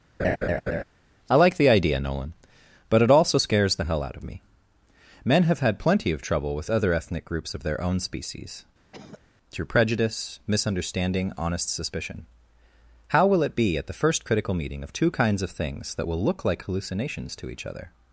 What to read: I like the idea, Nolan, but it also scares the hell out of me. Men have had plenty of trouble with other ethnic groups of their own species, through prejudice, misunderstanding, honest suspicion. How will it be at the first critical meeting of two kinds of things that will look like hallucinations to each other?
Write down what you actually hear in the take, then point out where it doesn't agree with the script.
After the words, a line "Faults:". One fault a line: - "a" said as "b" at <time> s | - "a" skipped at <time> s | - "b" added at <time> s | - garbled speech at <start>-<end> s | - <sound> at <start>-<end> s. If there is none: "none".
I like the idea, Nolan, but it also scares the hell out of me. Men have had plenty of trouble with other ethnic groups of their own species, through prejudice, misunderstanding, honest suspicion. How will it be at the first critical meeting of two kinds of things that will look like hallucinations to each other?
Faults:
- laugh at 0.2-0.8 s
- cough at 8.9-9.2 s